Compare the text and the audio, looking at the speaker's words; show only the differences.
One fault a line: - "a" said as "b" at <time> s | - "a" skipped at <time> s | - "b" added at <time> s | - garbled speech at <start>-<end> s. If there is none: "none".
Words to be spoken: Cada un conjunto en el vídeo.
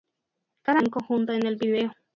none